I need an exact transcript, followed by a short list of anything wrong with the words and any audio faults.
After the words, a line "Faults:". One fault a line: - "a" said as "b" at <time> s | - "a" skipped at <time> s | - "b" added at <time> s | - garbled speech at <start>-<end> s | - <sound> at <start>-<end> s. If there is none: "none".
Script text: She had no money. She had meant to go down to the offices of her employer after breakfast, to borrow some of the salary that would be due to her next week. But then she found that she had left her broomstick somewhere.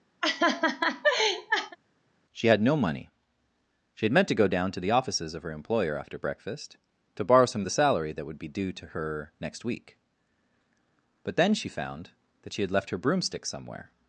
She had no money. She had meant to go down to the offices of her employer after breakfast, to borrow some of the salary that would be due to her next week. But then she found that she had left her broomstick somewhere.
Faults:
- laugh at 0.2-1.8 s